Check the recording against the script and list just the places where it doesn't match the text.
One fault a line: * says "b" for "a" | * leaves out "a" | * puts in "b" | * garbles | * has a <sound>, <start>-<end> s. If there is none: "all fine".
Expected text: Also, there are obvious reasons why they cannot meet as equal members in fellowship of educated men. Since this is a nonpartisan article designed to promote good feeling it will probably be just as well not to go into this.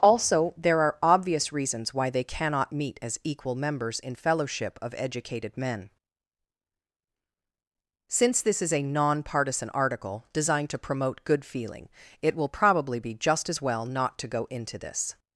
all fine